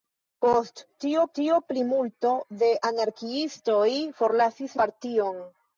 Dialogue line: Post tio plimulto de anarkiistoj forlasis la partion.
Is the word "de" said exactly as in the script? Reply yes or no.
yes